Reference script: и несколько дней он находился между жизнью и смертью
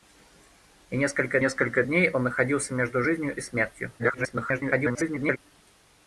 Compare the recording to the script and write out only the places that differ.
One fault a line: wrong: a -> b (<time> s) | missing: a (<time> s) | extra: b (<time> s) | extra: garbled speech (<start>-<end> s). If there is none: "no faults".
extra: несколько (1.4 s)
extra: garbled speech (4.0-5.4 s)